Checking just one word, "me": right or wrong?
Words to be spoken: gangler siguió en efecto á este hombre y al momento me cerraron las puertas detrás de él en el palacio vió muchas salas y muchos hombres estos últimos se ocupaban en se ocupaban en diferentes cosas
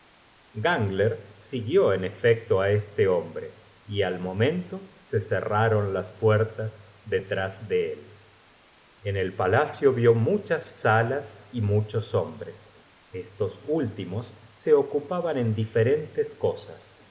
wrong